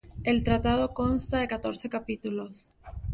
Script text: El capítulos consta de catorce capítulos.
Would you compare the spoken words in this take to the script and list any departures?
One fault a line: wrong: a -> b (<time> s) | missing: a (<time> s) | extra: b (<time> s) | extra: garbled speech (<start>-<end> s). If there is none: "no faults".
wrong: capítulos -> tratado (0.4 s)